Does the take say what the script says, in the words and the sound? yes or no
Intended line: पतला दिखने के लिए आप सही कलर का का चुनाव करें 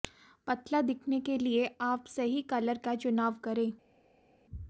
no